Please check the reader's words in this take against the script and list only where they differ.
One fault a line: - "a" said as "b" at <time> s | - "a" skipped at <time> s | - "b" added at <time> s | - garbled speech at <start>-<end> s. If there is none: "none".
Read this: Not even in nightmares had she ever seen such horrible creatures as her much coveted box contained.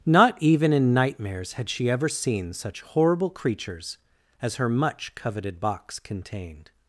none